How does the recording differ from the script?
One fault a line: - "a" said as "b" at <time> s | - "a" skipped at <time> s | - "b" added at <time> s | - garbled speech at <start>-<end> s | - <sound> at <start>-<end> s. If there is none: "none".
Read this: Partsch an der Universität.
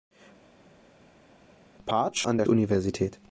none